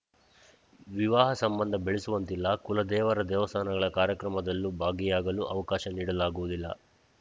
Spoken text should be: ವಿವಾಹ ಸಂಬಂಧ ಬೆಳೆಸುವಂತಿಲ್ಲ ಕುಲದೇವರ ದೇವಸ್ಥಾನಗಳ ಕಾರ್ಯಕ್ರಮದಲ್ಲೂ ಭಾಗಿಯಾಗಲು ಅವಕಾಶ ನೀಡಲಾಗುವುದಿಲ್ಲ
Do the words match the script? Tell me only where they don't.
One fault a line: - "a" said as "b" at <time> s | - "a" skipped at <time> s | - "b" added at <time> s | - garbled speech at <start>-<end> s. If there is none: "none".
none